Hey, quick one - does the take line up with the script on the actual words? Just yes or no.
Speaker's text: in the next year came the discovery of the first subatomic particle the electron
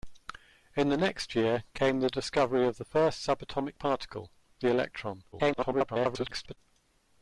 no